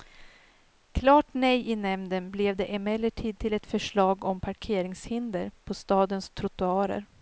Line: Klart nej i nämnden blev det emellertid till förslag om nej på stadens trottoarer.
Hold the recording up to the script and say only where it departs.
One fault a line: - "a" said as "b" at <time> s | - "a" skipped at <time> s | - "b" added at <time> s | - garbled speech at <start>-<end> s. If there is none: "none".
- "ett" added at 3.5 s
- "nej" said as "parkeringshinder" at 4.4 s